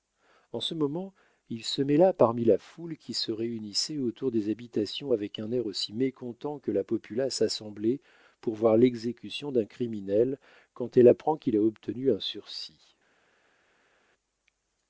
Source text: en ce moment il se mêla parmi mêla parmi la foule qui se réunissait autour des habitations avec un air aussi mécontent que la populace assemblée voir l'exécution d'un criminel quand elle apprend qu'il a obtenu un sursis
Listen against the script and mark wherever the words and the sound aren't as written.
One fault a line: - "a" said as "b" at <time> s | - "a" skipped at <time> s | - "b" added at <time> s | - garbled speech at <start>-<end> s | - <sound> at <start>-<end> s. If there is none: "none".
- "mêla parmi" skipped at 2.4 s
- "pour" added at 8.4 s